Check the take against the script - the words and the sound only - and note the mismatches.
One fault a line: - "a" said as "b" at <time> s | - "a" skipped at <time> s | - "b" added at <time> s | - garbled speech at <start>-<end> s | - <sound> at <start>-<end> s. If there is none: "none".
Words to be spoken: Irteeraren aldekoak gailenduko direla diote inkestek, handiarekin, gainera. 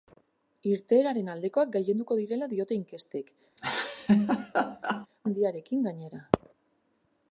- laugh at 3.6-5.1 s